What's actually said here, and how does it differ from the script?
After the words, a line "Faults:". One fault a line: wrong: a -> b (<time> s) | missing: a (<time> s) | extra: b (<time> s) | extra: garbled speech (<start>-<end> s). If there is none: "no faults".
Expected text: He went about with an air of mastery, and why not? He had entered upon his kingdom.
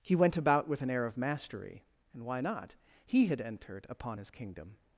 He went about with an air of mastery, and why not? He had entered upon his kingdom.
Faults:
no faults